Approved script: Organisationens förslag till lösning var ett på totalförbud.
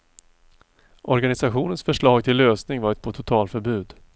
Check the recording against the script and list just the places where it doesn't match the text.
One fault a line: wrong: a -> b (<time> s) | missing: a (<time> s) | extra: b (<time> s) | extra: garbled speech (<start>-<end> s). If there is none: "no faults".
no faults